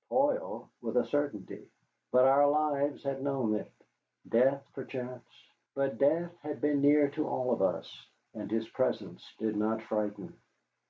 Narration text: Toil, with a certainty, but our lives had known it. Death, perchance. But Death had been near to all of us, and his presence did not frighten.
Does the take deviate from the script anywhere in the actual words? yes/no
no